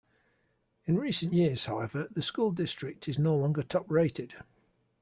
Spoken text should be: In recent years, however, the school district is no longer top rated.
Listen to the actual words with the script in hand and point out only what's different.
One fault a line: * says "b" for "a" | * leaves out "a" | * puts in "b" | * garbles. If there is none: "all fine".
all fine